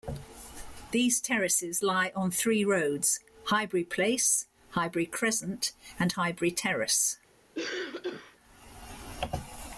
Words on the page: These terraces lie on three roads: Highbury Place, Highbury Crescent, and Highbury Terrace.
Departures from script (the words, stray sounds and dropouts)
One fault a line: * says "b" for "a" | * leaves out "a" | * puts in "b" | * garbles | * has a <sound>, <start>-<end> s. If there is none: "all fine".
* has a cough, 7.5-8.4 s